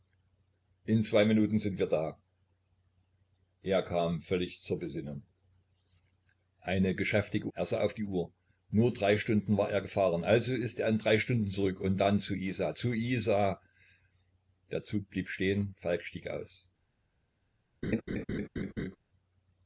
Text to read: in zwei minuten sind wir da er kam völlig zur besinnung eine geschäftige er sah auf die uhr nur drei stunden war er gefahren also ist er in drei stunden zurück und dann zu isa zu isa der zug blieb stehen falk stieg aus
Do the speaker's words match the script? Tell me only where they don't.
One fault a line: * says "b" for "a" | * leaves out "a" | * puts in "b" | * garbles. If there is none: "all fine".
all fine